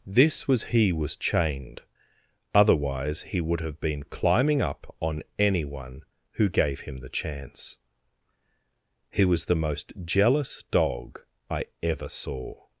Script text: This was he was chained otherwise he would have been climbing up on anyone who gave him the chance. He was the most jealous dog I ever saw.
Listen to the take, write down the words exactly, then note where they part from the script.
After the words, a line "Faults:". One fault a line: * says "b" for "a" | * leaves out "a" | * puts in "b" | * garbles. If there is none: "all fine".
This was he was chained otherwise he would have been climbing up on anyone who gave him the chance. He was the most jealous dog I ever saw.
Faults:
all fine